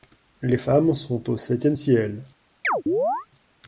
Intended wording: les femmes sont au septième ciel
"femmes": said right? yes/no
yes